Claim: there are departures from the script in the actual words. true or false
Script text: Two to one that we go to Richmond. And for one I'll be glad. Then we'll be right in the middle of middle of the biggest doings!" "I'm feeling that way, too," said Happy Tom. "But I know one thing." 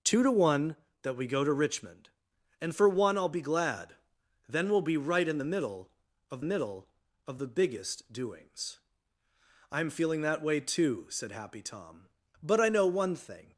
false